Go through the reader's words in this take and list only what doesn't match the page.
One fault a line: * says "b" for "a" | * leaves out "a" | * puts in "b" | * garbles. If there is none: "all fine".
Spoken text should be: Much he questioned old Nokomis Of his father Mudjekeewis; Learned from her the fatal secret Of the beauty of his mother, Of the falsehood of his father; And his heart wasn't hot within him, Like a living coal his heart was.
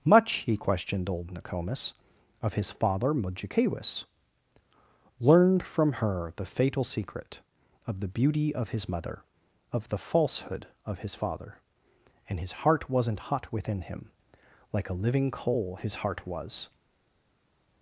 all fine